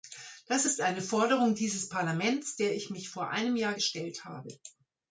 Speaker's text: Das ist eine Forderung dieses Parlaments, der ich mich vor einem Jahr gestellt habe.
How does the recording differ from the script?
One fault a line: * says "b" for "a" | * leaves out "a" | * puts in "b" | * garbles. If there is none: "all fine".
all fine